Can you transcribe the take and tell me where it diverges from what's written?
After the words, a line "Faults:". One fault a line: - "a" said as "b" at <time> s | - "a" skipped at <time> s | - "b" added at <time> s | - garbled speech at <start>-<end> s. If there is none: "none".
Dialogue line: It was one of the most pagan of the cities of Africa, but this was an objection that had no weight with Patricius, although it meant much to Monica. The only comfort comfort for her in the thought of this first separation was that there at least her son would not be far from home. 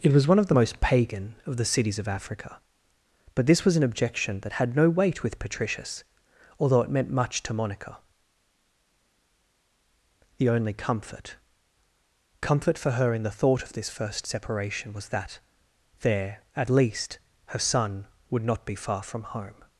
It was one of the most pagan of the cities of Africa, but this was an objection that had no weight with Patricius, although it meant much to Monica. The only comfort comfort for her in the thought of this first separation was that there at least her son would not be far from home.
Faults:
none